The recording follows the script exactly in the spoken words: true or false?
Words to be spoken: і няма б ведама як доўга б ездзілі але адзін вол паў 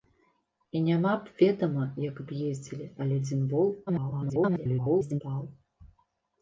false